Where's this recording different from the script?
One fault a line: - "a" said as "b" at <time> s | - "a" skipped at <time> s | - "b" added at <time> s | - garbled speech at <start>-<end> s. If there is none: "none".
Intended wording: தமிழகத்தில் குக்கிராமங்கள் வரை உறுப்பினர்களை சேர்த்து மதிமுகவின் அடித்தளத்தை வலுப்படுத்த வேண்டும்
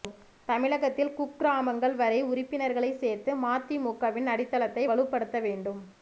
none